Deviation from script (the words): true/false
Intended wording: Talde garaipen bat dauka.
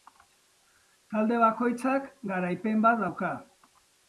true